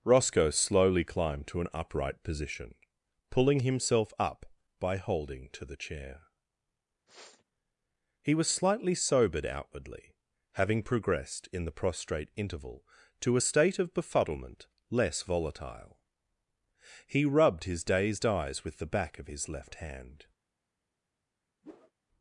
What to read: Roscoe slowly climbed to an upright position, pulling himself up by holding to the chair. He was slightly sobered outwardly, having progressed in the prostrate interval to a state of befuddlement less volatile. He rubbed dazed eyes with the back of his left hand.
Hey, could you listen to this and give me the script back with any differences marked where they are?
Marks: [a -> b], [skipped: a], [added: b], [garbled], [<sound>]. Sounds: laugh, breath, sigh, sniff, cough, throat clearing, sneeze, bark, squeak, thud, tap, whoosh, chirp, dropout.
Roscoe slowly climbed to an upright position, pulling himself up by holding to the chair. [sniff] He was slightly sobered outwardly, having progressed in the prostrate interval to a state of befuddlement less volatile. He rubbed [added: his] dazed eyes with the back of his left hand. [whoosh]